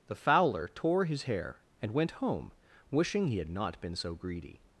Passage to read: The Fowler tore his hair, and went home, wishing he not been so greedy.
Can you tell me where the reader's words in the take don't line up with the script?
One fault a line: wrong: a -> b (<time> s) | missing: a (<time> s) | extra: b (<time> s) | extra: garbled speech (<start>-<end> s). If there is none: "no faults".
extra: had (3.4 s)